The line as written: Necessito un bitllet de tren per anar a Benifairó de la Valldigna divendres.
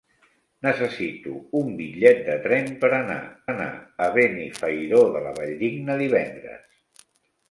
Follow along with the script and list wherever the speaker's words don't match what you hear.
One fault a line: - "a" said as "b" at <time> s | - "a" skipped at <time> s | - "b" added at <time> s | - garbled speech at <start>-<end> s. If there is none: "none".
- "anar" added at 3.5 s